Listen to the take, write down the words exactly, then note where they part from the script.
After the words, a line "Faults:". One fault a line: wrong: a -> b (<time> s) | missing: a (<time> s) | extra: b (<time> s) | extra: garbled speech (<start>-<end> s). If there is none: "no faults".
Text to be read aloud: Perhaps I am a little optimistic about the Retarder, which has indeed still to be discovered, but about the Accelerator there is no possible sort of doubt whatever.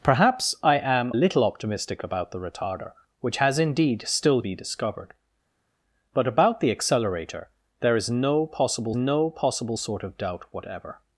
Perhaps I am little optimistic about the Retarder, which has indeed still be discovered, but about the Accelerator there is no possible no possible sort of doubt whatever.
Faults:
missing: a (1.1 s)
missing: to (4.4 s)
extra: no possible (8.9 s)